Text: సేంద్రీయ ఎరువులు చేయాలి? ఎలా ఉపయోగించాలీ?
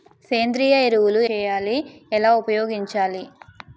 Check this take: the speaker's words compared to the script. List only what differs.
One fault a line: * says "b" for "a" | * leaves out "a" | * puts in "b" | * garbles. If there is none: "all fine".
all fine